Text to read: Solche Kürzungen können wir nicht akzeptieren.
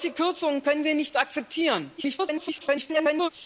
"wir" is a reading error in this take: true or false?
false